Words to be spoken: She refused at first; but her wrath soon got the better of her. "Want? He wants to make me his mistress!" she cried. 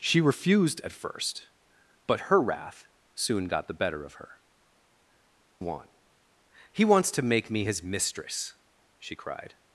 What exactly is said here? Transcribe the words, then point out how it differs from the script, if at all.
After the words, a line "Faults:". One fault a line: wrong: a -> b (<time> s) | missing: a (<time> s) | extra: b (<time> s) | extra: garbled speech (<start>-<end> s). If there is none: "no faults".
She refused at first; but her wrath soon got the better of her. "Want? He wants to make me his mistress!" she cried.
Faults:
no faults